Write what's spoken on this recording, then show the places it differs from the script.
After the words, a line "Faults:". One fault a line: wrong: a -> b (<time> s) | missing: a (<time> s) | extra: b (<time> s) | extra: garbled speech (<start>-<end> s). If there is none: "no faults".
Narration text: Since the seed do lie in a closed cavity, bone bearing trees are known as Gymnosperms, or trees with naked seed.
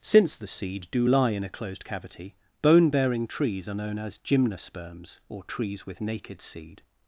Since the seed do lie in a closed cavity, bone bearing trees are known as Gymnosperms, or trees with naked seed.
Faults:
no faults